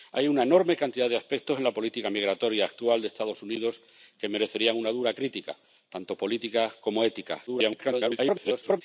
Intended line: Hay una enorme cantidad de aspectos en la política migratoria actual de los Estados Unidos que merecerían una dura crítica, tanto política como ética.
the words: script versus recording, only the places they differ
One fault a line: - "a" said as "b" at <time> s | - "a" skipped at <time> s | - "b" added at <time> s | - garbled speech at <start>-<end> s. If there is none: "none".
- garbled speech at 7.5-8.8 s